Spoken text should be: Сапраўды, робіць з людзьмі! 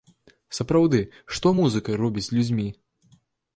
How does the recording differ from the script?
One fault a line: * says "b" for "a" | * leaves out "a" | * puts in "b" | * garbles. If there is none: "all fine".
* puts in "што музыка"